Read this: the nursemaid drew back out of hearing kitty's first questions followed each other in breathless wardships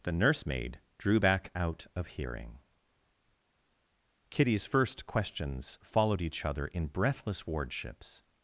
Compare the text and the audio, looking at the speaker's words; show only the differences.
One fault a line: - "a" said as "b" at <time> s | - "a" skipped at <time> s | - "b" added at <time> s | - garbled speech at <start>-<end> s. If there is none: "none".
none